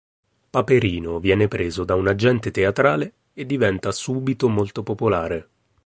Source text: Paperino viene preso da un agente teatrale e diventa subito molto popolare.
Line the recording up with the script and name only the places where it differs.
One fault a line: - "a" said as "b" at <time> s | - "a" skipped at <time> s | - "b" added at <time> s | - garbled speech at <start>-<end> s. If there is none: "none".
none